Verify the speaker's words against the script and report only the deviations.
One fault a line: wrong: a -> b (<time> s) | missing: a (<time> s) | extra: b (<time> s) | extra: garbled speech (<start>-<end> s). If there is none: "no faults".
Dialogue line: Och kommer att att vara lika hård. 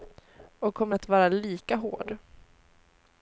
missing: att (1.1 s)